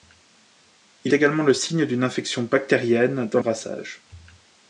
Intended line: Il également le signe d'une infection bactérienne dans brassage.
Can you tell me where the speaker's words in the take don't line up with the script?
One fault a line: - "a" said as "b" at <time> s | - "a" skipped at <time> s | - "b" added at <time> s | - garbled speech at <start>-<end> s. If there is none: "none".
none